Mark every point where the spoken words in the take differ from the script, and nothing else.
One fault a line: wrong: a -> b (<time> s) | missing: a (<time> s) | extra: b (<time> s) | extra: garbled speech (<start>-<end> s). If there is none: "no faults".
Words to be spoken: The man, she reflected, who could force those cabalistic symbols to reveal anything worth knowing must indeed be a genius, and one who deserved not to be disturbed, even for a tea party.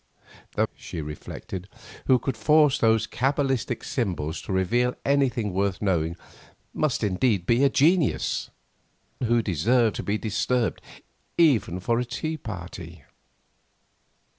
missing: man (0.7 s)
missing: and one (8.5 s)
missing: not (10.0 s)